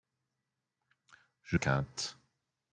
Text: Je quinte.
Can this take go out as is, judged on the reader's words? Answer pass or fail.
pass